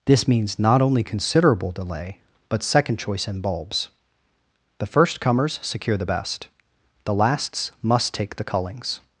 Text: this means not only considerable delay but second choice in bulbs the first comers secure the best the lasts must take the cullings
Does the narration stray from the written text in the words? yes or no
no